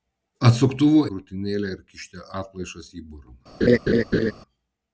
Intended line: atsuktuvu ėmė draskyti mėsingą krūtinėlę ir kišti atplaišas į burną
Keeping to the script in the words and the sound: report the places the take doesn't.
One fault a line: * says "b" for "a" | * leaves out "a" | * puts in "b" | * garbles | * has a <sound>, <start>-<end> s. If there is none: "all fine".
* leaves out "ėmė draskyti mėsingą"
* has a laugh, 3.6-4.3 s